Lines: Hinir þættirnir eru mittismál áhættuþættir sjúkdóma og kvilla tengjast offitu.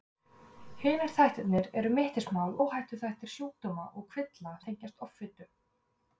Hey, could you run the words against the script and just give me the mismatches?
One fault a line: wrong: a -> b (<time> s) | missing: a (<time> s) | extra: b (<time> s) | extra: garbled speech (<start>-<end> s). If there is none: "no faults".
no faults